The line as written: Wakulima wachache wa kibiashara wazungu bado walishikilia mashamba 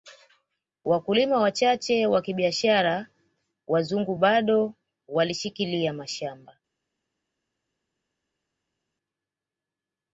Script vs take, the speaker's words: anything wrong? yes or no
no